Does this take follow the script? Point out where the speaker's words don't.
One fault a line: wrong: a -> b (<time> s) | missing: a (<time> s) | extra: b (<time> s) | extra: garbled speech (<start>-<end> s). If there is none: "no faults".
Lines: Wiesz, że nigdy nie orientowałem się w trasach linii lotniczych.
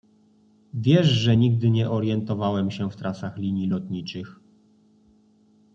no faults